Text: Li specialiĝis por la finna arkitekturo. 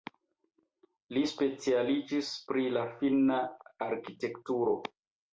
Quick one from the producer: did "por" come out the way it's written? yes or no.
no